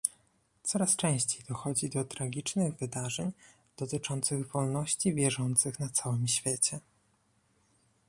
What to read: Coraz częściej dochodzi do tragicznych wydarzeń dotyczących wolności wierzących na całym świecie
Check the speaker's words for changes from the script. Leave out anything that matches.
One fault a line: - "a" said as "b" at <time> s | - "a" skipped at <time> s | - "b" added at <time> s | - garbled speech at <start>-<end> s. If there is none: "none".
none